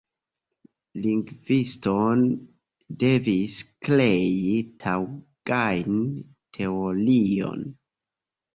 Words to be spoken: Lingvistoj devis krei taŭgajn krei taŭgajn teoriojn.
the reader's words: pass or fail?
fail